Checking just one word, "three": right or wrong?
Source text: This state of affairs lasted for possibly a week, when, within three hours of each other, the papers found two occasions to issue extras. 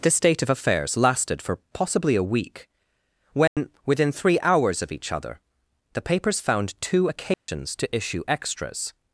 right